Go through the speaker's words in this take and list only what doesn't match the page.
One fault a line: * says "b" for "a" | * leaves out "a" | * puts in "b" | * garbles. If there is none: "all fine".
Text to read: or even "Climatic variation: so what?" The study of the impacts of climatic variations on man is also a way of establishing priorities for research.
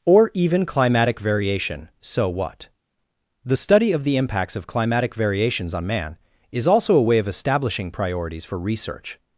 all fine